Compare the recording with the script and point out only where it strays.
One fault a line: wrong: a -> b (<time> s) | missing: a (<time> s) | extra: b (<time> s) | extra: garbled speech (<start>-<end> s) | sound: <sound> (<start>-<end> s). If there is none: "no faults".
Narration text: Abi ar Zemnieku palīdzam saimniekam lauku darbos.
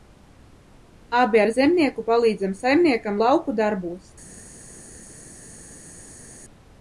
no faults